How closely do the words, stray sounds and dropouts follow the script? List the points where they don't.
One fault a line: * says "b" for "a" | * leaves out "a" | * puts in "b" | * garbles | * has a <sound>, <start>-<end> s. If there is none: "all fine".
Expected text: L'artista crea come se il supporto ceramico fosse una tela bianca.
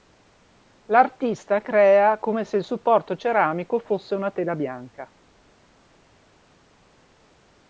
all fine